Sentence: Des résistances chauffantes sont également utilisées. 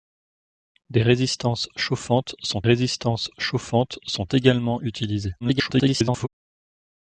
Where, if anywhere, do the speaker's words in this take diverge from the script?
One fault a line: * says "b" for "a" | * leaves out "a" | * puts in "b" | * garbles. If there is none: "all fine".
* puts in "résistances chauffantes sont"
* garbles